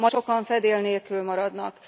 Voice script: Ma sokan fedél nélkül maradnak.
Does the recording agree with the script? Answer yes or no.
yes